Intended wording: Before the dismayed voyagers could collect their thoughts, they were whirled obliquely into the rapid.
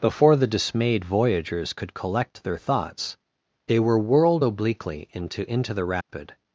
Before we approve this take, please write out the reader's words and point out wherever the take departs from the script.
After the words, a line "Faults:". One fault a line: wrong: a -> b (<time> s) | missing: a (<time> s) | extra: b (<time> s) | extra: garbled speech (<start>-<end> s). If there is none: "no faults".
Before the dismayed voyagers could collect their thoughts, they were whirled obliquely into into the rapid.
Faults:
extra: into (5.5 s)